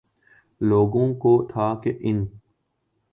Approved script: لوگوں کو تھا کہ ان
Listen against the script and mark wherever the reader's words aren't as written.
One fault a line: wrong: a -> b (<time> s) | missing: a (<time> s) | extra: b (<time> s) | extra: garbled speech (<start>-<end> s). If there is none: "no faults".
no faults